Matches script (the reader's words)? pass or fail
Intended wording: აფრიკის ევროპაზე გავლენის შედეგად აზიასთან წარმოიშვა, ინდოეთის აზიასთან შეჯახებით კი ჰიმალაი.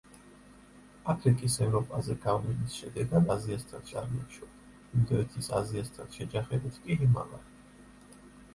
pass